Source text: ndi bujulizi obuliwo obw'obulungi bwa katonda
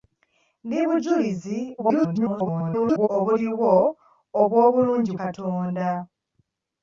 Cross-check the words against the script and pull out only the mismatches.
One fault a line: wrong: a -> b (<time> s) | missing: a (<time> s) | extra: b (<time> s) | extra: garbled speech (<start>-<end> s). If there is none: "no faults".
extra: garbled speech (1.8-3.1 s)
missing: bwa (5.1 s)